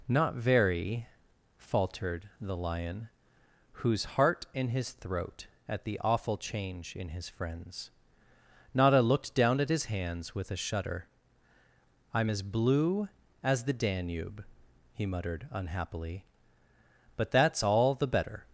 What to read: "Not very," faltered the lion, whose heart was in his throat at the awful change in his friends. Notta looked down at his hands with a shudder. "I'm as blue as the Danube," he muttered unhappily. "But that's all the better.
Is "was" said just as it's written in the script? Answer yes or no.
no